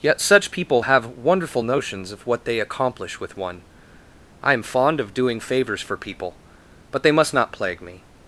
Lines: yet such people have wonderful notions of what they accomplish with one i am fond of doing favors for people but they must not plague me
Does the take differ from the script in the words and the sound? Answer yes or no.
no